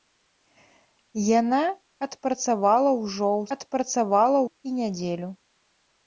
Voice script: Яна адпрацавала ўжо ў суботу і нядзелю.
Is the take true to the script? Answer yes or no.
no